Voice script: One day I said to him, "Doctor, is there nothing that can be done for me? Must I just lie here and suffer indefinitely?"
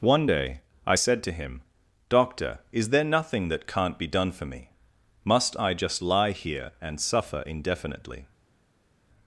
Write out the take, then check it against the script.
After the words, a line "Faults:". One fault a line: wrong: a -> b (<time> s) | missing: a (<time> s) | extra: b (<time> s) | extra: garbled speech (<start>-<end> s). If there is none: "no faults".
One day I said to him, "Doctor, is there nothing that can't be done for me? Must I just lie here and suffer indefinitely?"
Faults:
wrong: can -> can't (3.7 s)